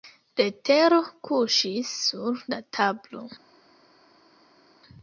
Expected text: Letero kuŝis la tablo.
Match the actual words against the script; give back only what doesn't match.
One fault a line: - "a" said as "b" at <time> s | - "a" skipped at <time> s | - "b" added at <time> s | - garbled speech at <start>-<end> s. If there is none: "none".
- "sur" added at 2.1 s